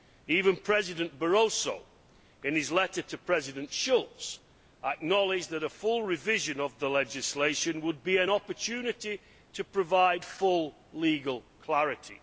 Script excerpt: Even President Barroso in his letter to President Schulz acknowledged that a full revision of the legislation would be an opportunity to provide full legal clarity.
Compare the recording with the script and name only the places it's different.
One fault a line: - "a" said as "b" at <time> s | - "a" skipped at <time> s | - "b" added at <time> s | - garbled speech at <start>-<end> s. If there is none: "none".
none